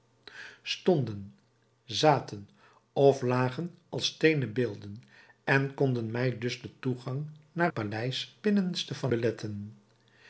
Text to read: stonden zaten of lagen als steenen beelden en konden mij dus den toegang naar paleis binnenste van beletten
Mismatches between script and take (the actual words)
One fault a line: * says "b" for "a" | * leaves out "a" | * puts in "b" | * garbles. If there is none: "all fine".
all fine